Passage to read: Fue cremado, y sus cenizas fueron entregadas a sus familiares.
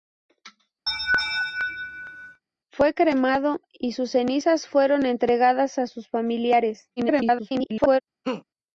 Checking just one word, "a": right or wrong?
right